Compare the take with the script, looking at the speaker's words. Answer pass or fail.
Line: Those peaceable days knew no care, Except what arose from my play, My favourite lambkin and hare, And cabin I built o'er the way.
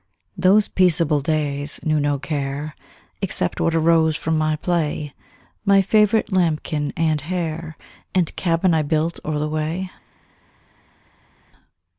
pass